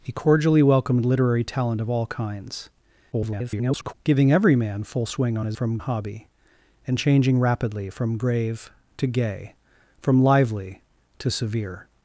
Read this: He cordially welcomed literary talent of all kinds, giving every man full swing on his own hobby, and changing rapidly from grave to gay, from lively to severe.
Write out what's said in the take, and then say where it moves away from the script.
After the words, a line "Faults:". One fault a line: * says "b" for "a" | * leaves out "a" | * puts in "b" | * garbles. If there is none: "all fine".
He cordially welcomed literary talent of all kinds, [garbled] giving every man full swing on his from hobby, and changing rapidly from grave to gay, from lively to severe.
Faults:
* garbles
* says "from" for "own"